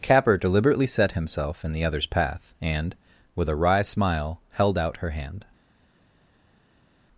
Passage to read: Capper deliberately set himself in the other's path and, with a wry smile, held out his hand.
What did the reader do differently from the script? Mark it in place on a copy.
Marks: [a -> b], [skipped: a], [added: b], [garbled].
Capper deliberately set himself in the other's path and, with a wry smile, held out [his -> her] hand.